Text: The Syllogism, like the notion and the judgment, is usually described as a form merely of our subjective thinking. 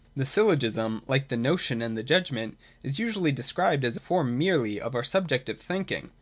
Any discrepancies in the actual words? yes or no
no